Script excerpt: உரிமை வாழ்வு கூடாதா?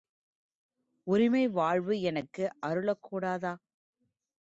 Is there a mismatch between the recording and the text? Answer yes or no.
yes